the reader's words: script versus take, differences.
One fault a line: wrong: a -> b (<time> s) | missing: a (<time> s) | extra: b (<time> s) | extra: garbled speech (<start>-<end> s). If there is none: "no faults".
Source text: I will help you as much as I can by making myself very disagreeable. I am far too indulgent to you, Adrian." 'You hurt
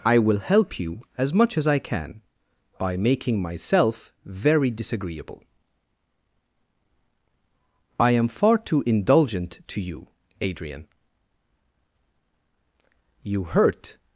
no faults